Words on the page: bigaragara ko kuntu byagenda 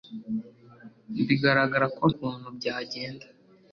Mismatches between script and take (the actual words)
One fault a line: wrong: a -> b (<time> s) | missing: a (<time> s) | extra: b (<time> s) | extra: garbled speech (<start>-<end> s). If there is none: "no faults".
no faults